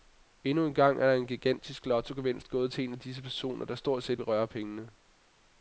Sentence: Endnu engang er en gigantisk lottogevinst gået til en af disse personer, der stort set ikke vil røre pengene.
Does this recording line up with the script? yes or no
no